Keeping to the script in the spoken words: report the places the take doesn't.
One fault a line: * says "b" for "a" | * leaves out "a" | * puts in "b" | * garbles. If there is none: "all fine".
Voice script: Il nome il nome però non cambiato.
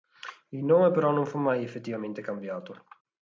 * says "però non fu mai effettivamente" for "il nome però non"